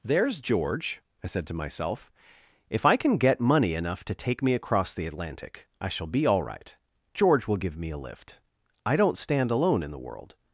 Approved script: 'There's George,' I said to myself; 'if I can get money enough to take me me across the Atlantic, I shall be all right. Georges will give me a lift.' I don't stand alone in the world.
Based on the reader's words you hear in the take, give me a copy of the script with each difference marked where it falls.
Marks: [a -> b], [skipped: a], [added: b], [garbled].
'There's George,' I said to myself; 'if I can get money enough to take me [skipped: me] across the Atlantic, I shall be all right. [Georges -> George] will give me a lift.' I don't stand alone in the world.